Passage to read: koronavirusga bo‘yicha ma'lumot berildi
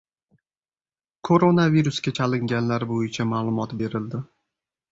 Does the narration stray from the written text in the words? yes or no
yes